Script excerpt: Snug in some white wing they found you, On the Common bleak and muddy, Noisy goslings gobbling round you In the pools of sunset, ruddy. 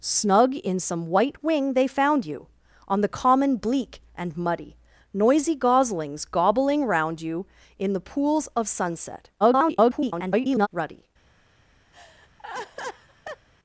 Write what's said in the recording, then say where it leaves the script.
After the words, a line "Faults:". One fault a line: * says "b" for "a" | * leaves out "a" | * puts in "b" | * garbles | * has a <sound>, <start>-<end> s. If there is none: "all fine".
Snug in some white wing they found you, On the Common bleak and muddy, Noisy goslings gobbling round you In the pools of sunset, [garbled] ruddy.
Faults:
* garbles
* has a laugh, 11.9-13.5 s